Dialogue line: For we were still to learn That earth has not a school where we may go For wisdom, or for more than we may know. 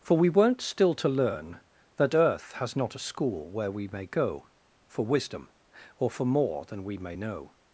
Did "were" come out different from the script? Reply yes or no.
yes